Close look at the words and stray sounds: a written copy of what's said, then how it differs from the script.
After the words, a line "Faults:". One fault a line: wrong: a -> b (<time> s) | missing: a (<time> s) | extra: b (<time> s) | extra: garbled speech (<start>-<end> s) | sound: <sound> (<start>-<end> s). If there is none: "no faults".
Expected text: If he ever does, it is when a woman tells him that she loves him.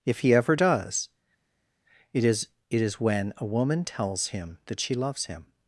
If he ever does, it is it is when a woman tells him that she loves him.
Faults:
extra: it is (2.7 s)